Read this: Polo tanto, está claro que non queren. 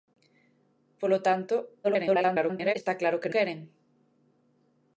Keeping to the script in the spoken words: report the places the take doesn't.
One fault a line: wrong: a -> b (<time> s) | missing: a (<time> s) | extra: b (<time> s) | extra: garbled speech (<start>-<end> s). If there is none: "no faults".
extra: garbled speech (1.8-2.7 s)
missing: non (3.3 s)